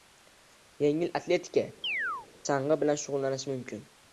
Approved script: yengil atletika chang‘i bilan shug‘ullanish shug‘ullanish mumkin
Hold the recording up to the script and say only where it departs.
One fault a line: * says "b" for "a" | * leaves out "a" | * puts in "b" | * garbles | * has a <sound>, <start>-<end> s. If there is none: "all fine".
* has a chirp, 1.8-2.3 s
* leaves out "shug‘ullanish"